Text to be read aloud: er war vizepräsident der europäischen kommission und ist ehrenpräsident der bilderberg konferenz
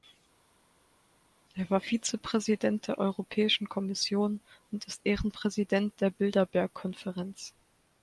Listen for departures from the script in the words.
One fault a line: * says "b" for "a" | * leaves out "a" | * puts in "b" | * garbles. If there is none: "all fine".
all fine